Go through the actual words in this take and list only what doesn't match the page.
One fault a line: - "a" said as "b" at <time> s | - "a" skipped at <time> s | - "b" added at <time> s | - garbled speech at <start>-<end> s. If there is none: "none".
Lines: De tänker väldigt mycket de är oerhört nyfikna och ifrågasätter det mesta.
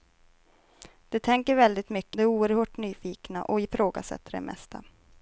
none